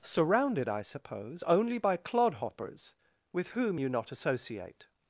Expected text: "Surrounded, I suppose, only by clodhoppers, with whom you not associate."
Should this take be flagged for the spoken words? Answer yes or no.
no